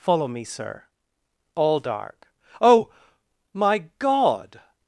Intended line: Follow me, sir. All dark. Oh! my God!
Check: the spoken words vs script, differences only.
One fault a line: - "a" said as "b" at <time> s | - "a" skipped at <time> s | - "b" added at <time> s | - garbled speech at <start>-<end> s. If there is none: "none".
none